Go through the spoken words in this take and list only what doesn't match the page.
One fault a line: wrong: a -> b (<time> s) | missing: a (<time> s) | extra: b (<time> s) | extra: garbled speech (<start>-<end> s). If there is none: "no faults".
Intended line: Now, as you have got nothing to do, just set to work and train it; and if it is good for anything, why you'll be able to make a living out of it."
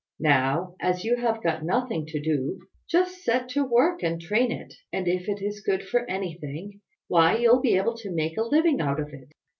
no faults